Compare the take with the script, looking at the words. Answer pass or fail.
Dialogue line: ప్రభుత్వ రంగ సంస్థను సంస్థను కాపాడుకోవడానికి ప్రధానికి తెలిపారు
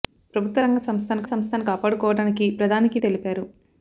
pass